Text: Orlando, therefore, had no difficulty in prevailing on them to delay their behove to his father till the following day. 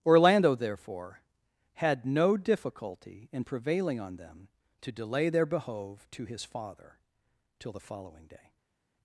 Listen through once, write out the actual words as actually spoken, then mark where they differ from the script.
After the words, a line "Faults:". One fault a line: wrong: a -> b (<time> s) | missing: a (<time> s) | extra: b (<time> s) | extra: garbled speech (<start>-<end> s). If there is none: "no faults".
Orlando, therefore, had no difficulty in prevailing on them to delay their behove to his father till the following day.
Faults:
no faults